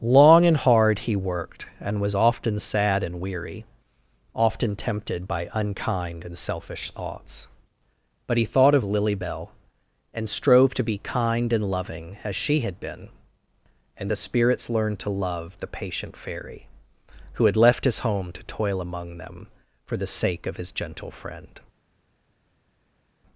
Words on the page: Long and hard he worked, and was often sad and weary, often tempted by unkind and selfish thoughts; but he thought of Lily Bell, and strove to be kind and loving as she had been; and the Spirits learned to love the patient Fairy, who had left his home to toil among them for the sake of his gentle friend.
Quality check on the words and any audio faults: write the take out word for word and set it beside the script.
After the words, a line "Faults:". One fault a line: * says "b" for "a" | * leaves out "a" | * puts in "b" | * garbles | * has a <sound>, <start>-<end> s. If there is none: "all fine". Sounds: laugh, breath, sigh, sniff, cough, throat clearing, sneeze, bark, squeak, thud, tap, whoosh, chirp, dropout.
Long and hard he worked, and was often sad and weary, often tempted by unkind and selfish thoughts; but he thought of Lily Bell, and strove to be kind and loving as she had been; and the Spirits learned to love the patient Fairy, who had left his home to toil among them for the sake of his gentle friend.
Faults:
all fine